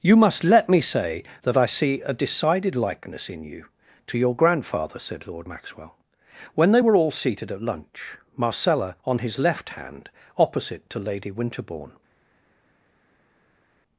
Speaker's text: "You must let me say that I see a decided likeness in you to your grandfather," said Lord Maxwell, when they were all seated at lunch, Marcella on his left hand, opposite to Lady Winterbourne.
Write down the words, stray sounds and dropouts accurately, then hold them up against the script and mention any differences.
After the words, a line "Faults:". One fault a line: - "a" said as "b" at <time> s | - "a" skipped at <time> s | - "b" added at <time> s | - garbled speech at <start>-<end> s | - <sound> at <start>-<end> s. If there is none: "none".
"You must let me say that I see a decided likeness in you to your grandfather," said Lord Maxwell, when they were all seated at lunch, Marcella on his left hand, opposite to Lady Winterbourne.
Faults:
none